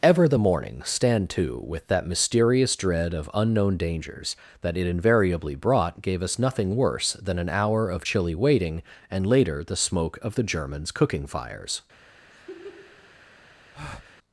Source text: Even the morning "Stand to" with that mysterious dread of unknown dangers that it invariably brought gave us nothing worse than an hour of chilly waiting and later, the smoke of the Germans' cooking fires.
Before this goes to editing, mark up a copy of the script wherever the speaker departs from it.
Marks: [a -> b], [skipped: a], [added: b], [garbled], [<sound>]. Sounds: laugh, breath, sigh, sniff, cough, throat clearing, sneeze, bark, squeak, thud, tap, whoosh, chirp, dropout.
[Even -> Ever] the morning "Stand to" with that mysterious dread of unknown dangers that it invariably brought gave us nothing worse than an hour of chilly waiting and later, the smoke of the Germans' cooking fires. [laugh] [breath]